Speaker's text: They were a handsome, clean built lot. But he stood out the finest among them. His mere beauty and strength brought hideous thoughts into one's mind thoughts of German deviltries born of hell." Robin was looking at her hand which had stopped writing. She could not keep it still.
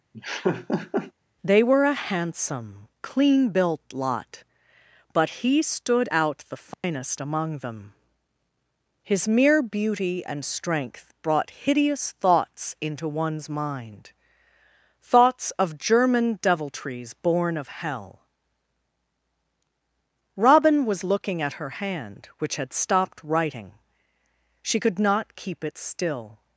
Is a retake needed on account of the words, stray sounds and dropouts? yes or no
yes